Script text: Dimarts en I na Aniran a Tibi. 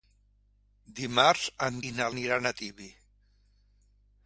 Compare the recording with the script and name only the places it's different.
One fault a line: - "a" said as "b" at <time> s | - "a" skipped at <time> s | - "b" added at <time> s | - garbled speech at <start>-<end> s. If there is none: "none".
none